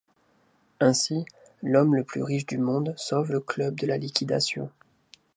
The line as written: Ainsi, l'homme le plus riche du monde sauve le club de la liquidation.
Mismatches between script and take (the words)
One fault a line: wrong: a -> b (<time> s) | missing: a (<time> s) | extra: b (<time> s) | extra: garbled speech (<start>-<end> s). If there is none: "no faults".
no faults